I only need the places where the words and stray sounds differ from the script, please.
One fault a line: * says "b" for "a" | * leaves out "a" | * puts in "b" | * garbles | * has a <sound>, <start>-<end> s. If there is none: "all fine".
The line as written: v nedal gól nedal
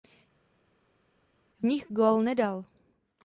* says "nich" for "nedal"